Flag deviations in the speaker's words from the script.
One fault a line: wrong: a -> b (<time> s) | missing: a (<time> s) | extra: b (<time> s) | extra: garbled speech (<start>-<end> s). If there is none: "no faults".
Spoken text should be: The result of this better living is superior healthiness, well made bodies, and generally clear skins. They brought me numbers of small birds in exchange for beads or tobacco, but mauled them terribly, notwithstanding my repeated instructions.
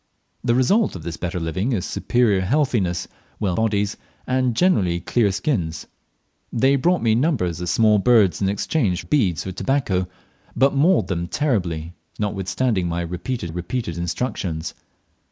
missing: made (3.5 s)
missing: for (9.0 s)
extra: repeated (13.5 s)